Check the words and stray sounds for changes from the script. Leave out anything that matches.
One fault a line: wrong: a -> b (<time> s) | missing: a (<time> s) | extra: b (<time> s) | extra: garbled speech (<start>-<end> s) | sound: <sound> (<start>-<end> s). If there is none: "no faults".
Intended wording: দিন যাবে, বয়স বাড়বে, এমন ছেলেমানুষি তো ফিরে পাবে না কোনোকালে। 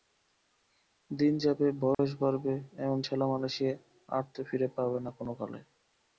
sound: dropout (1.9-2.0 s)
extra: আর (4.1 s)